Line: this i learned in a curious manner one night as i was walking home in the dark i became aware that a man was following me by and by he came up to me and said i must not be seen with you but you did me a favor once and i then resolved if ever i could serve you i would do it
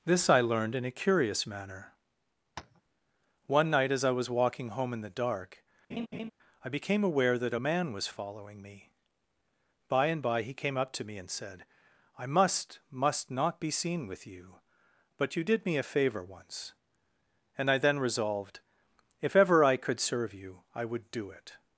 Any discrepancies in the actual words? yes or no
yes